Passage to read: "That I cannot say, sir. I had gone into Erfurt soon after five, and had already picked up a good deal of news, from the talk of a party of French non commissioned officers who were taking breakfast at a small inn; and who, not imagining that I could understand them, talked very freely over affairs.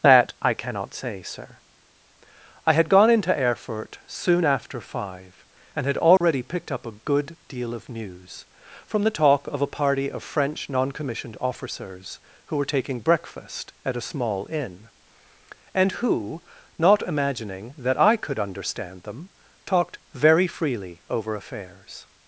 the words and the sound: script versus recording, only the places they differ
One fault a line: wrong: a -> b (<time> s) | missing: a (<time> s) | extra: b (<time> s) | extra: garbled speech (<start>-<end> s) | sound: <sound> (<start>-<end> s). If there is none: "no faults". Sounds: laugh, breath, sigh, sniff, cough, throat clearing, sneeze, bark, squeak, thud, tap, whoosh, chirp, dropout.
sound: dropout (6.2-6.2 s)